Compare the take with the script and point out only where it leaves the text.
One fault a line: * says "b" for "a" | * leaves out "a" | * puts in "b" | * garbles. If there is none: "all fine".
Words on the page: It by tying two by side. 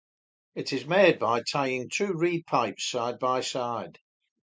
* puts in "is made"
* puts in "reed pipes side"